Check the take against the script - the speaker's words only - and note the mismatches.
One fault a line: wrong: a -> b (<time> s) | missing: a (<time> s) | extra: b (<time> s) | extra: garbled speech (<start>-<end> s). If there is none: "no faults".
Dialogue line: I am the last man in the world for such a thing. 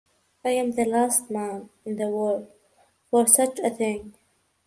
no faults